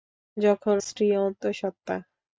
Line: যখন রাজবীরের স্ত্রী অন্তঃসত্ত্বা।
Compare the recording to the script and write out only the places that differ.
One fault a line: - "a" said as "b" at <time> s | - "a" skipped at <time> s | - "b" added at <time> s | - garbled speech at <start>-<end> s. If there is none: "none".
- "রাজবীরের" skipped at 0.8 s